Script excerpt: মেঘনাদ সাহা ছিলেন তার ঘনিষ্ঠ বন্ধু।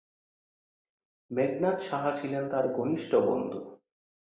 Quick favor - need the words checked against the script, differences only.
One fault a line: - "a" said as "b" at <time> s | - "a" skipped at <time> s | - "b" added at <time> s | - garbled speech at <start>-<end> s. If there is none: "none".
none